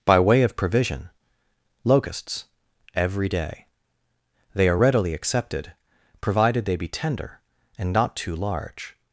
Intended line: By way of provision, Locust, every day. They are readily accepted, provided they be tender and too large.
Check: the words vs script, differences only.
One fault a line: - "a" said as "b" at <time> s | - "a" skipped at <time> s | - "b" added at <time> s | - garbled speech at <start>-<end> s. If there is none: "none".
- "Locust" said as "Locusts" at 1.8 s
- "not" added at 7.9 s